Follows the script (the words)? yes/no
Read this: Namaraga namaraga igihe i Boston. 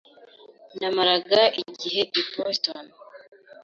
no